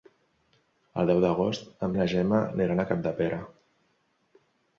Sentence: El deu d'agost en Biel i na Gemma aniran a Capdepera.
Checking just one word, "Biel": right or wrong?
wrong